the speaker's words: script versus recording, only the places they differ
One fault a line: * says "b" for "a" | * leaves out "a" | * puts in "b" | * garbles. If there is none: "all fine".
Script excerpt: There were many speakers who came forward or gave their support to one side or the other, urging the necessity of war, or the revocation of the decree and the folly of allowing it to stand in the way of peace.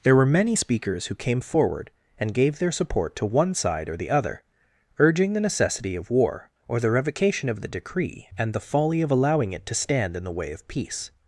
* says "and" for "or"